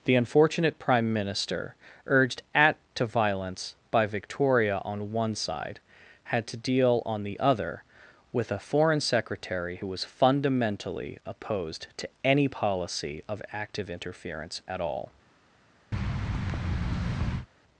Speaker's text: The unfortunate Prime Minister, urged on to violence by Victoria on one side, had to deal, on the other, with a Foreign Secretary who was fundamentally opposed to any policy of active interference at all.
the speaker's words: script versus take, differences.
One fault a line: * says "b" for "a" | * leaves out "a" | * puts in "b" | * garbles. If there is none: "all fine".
* says "at" for "on"